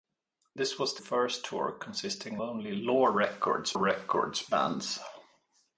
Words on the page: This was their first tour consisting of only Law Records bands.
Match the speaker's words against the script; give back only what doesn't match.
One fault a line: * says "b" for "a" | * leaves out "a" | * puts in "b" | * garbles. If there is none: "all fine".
* leaves out "their"
* leaves out "of"
* puts in "Records"